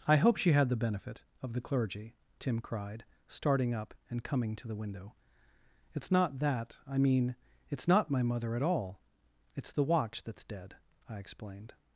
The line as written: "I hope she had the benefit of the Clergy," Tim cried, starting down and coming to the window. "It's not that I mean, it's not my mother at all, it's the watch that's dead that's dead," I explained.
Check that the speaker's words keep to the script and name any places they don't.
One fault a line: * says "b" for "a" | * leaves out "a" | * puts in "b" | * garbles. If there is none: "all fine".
* says "up" for "down"
* leaves out "that's dead"